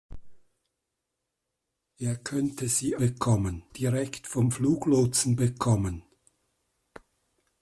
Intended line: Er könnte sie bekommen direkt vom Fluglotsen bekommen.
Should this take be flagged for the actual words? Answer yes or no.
no